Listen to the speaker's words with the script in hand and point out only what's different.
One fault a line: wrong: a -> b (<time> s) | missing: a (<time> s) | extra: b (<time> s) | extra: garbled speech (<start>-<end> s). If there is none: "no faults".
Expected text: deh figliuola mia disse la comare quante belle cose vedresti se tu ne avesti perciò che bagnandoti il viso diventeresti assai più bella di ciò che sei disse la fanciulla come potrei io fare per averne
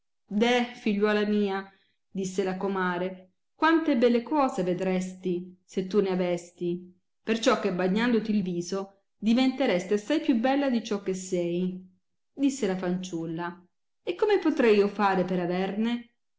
extra: e (14.0 s)